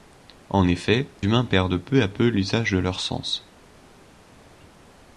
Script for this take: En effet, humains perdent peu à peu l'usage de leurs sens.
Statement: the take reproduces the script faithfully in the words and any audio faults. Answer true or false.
true